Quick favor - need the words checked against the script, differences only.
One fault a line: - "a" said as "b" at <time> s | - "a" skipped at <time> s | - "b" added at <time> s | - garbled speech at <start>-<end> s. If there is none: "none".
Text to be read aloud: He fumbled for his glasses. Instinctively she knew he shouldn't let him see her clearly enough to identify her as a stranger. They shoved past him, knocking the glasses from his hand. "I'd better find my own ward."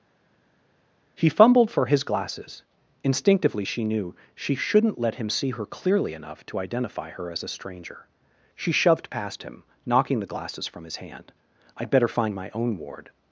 - "he" said as "she" at 4.4 s
- "They" said as "She" at 8.5 s